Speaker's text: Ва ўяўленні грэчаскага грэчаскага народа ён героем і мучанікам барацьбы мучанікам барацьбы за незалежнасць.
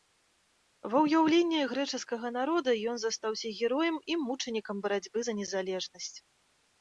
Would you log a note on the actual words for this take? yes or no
yes